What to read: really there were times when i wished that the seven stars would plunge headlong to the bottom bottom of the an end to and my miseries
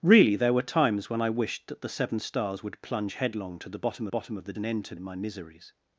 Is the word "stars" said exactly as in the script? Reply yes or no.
yes